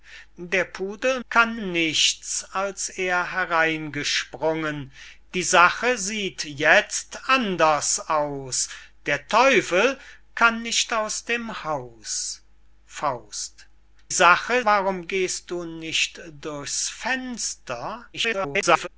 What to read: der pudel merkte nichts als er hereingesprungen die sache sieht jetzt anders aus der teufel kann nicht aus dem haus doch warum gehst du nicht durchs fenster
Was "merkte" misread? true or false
true